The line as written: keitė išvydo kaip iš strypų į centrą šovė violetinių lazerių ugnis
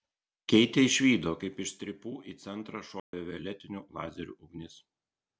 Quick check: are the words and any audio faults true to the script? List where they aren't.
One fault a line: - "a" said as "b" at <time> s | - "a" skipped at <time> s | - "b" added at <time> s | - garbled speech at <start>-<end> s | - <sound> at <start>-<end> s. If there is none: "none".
- dropout at 3.0-3.1 s